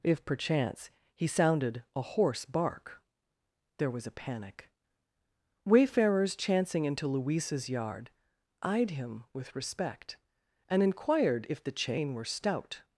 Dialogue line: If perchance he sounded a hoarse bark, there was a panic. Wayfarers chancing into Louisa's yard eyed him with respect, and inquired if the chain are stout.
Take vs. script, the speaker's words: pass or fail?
fail